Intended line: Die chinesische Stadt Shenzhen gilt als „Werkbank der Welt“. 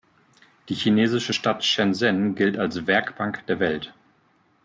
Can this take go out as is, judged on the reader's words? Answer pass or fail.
pass